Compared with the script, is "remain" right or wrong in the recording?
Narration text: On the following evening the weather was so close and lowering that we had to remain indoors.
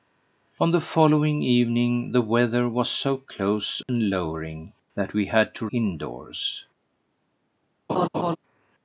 wrong